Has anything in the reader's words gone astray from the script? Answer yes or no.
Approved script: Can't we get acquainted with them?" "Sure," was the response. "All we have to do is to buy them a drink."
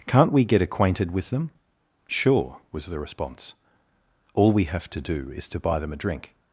no